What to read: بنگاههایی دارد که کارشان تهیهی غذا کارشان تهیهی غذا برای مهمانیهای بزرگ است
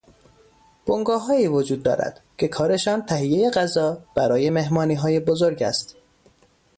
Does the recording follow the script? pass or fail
fail